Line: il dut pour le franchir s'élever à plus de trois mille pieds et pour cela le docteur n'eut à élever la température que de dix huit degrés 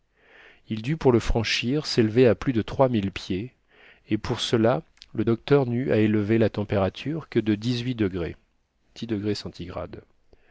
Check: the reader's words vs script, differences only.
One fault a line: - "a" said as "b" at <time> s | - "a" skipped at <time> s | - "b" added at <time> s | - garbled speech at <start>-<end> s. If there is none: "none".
none